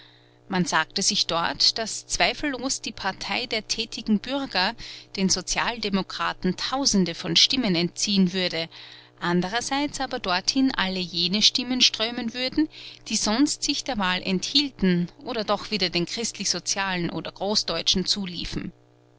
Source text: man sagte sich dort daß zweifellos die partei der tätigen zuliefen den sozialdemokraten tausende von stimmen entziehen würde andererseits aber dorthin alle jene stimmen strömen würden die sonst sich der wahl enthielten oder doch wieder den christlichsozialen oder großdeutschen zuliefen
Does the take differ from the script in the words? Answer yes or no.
yes